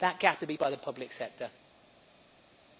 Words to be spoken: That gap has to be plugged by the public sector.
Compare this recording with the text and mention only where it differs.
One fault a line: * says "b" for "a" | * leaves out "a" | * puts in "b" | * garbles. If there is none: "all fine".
* leaves out "has"
* leaves out "plugged"